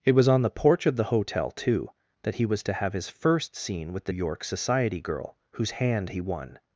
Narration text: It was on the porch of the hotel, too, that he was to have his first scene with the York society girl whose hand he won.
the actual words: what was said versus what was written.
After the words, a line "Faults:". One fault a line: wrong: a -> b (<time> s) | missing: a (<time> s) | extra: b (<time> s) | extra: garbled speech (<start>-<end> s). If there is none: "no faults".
It was on the porch of the hotel, too, that he was to have his first scene with the York society girl whose hand he won.
Faults:
no faults